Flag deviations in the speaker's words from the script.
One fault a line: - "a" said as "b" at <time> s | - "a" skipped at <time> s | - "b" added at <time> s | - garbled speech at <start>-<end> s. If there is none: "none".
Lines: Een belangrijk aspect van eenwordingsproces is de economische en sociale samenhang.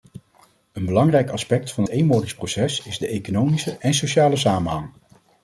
none